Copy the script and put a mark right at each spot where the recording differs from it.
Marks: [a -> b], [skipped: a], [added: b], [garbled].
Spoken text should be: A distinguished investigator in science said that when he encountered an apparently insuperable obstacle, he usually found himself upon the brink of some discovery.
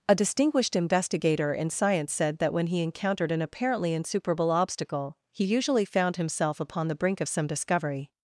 A distinguished investigator in science said that when he encountered an apparently insuperable obstacle, he usually found himself upon the brink of some discovery.